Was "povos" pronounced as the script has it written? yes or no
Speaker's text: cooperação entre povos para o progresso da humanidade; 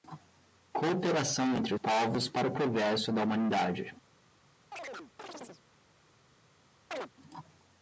yes